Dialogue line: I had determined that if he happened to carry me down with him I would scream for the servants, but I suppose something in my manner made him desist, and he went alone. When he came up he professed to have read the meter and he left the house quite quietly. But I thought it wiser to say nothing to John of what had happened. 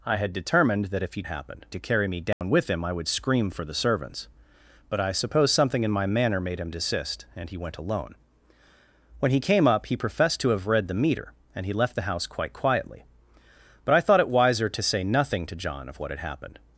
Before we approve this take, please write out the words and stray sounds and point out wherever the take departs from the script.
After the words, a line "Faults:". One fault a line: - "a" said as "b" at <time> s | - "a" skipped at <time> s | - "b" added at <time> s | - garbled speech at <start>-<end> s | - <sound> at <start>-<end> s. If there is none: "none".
I had determined that if he happened to carry me down with him I would scream for the servants, but I suppose something in my manner made him desist, and he went alone. When he came up he professed to have read the meter and he left the house quite quietly. But I thought it wiser to say nothing to John of what had happened.
Faults:
- dropout at 2.3-2.4 s